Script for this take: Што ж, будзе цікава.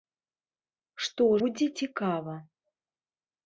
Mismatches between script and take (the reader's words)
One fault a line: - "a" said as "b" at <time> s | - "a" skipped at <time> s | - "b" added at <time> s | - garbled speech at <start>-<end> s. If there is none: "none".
- "ж" skipped at 1.3 s